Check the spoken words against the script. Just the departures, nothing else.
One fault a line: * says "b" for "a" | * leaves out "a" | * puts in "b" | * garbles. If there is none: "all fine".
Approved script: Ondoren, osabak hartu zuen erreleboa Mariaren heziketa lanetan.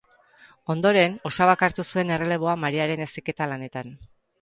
all fine